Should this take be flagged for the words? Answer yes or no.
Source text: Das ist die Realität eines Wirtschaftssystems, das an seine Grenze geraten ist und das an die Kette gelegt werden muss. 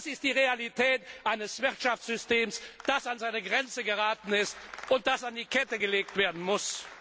no